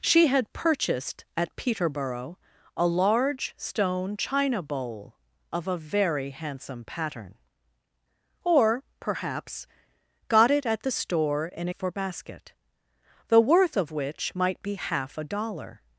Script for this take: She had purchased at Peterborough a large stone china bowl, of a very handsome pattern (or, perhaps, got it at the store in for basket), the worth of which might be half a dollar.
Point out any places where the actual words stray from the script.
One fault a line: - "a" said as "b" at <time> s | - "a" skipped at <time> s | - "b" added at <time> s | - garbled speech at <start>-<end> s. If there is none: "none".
none